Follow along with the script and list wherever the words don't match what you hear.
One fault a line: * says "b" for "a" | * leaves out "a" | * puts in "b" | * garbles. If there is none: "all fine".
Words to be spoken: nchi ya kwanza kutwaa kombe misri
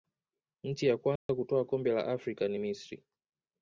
* puts in "la afrika ni"